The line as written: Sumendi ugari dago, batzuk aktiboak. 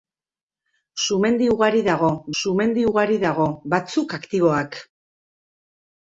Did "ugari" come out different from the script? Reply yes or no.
no